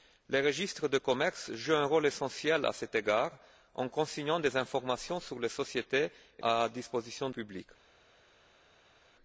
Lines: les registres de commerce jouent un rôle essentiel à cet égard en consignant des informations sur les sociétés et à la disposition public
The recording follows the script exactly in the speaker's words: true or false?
true